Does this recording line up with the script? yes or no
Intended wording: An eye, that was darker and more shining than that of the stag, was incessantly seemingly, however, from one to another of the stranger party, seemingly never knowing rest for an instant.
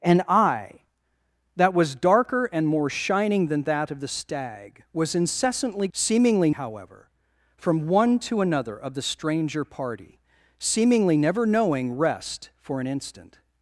yes